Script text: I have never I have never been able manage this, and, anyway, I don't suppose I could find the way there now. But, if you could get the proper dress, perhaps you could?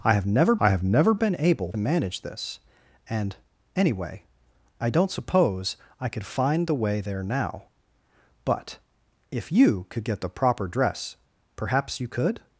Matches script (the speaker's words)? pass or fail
pass